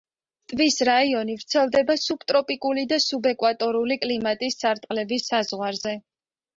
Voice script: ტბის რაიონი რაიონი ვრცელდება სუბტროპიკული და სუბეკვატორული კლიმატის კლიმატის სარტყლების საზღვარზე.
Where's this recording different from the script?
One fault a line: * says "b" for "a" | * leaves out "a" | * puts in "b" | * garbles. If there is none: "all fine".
* leaves out "რაიონი"
* leaves out "კლიმატის"